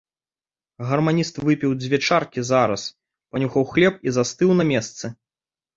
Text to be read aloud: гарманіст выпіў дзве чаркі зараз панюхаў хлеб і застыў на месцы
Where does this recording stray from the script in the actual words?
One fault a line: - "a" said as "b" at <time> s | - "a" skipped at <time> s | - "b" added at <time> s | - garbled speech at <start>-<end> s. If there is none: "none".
none